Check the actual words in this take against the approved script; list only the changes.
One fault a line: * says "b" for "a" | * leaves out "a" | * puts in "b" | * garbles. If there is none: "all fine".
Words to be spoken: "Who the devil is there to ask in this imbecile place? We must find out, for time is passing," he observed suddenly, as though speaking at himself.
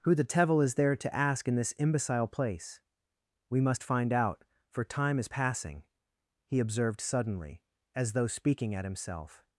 all fine